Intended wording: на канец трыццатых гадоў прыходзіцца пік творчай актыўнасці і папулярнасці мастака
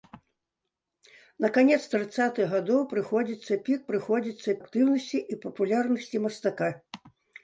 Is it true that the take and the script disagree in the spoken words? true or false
true